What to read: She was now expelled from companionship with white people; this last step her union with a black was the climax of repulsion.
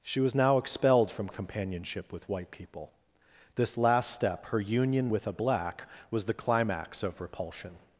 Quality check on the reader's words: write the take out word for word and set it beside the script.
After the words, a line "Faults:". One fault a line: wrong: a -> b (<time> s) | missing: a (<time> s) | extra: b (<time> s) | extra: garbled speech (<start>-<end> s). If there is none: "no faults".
She was now expelled from companionship with white people; this last step her union with a black was the climax of repulsion.
Faults:
no faults